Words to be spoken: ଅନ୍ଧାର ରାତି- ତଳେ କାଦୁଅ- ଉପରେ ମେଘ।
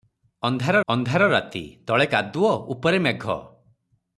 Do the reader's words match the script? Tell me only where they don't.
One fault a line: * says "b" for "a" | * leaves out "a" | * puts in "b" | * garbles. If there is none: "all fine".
* puts in "ଅନ୍ଧାର"